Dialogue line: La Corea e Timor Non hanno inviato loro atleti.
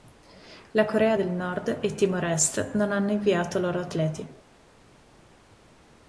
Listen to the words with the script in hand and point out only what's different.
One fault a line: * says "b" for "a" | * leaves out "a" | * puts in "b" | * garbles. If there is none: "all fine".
* puts in "del Nord"
* puts in "Est"